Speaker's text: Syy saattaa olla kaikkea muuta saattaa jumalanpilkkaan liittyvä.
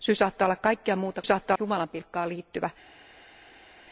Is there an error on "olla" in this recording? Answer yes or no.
no